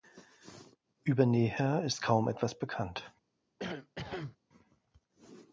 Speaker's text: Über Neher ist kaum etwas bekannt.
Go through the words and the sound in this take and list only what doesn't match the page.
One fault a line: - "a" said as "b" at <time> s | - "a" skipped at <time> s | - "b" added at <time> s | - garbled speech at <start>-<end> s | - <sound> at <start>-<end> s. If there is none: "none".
- cough at 3.6-4.4 s